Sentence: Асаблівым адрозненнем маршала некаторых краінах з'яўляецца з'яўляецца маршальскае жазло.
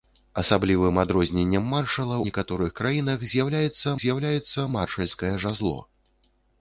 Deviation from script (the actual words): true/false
false